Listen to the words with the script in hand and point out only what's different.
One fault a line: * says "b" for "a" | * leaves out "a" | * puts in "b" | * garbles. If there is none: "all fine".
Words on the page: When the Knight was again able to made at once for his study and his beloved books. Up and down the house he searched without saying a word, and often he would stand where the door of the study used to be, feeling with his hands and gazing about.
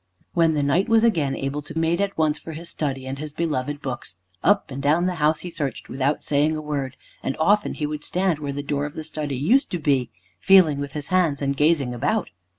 all fine